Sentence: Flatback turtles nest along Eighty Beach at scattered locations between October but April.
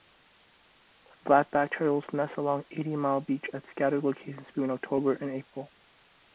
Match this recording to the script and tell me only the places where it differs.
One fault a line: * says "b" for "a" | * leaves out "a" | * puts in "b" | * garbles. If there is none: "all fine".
* puts in "mile"
* says "and" for "but"